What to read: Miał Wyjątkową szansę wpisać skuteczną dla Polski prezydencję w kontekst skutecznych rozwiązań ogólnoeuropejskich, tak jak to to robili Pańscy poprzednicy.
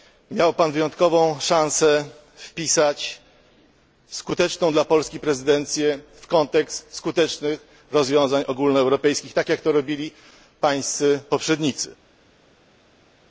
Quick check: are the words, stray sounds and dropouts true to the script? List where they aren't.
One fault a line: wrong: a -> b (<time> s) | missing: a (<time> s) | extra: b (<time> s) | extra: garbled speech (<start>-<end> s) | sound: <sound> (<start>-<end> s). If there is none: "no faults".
extra: Pan (0.5 s)
missing: to (9.7 s)